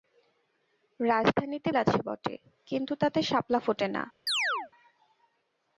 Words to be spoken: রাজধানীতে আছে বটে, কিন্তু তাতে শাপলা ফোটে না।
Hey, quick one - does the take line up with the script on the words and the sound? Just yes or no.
no